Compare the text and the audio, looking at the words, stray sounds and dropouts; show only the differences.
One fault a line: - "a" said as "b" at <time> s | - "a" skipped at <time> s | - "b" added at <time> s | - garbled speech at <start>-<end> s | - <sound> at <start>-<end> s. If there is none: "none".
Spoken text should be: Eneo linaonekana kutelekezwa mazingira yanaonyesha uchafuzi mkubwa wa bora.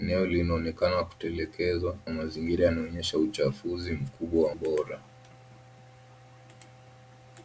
none